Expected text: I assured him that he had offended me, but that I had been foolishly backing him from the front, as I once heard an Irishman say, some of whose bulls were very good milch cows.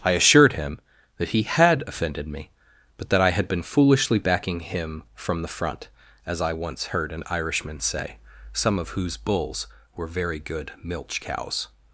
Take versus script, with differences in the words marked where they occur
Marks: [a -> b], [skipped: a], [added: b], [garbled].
I assured him that he had offended me, but that I had been foolishly backing him from the front, as I once heard an Irishman say, some of whose bulls were very good milch cows.